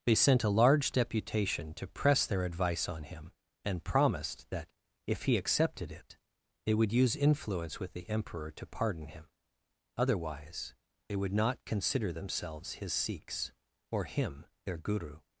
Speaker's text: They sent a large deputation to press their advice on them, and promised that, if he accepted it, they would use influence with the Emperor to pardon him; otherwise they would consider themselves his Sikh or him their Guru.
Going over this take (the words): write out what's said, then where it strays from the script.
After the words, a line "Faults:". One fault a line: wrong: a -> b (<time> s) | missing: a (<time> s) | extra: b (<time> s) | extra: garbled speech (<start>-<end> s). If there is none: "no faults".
They sent a large deputation to press their advice on him, and promised that, if he accepted it, they would use influence with the Emperor to pardon him; otherwise they would not consider themselves his Sikhs or him their Guru.
Faults:
wrong: them -> him (3.0 s)
extra: not (11.3 s)
wrong: Sikh -> Sikhs (12.9 s)